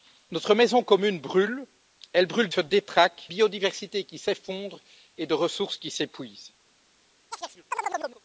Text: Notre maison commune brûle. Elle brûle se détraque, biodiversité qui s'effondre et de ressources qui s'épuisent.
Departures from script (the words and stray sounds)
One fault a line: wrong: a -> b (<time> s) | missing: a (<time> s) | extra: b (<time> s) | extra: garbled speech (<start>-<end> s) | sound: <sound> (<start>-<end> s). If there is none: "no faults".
sound: chirp (7.3-8.2 s)